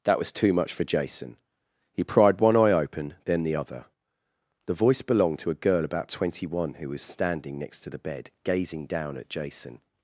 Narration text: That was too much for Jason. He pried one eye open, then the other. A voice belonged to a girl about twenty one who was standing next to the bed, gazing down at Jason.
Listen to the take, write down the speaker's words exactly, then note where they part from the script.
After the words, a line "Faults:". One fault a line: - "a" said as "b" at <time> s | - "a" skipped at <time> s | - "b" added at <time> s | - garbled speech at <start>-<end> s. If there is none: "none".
That was too much for Jason. He pried one eye open, then the other. The voice belonged to a girl about twenty one who was standing next to the bed, gazing down at Jason.
Faults:
- "A" said as "The" at 4.6 s